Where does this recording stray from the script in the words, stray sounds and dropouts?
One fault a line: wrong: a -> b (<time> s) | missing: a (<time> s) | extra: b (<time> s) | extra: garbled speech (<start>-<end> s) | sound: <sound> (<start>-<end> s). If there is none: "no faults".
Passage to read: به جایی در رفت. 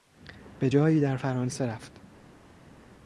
extra: فرانسه (1.1 s)